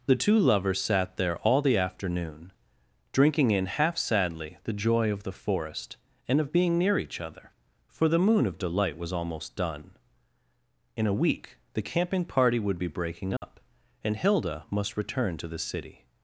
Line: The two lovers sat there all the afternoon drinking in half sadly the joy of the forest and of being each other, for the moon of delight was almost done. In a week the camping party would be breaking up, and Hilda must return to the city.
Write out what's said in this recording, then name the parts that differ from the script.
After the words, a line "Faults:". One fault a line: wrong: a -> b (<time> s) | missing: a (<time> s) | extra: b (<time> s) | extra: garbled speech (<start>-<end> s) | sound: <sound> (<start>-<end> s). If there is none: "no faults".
The two lovers sat there all the afternoon drinking in half sadly the joy of the forest and of being near each other, for the moon of delight was almost done. In a week the camping party would be breaking up, and Hilda must return to the city.
Faults:
extra: near (6.8 s)
sound: dropout (13.4-13.4 s)